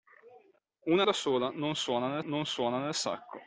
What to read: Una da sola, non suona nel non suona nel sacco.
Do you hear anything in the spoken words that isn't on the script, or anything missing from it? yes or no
no